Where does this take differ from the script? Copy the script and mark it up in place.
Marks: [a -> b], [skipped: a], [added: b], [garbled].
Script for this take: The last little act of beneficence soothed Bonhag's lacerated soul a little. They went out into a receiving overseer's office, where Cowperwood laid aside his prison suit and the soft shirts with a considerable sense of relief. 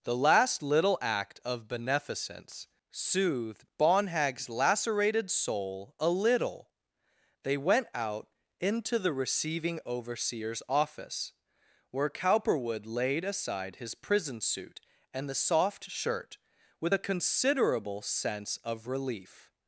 The last little act of beneficence soothed Bonhag's lacerated soul a little. They went out into [a -> the] receiving overseer's office, where Cowperwood laid aside his prison suit and the soft [shirts -> shirt] with a considerable sense of relief.